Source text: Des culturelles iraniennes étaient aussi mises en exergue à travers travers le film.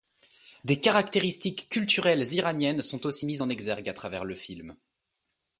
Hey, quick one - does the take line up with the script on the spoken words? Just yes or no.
no